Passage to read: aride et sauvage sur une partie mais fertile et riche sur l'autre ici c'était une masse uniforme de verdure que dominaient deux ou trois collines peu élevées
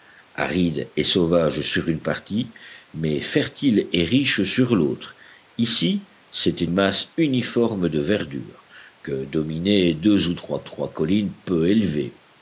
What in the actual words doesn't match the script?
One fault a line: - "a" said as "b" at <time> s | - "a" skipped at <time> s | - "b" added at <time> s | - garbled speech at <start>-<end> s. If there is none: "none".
- "une" skipped at 6.7 s
- "trois" added at 10.6 s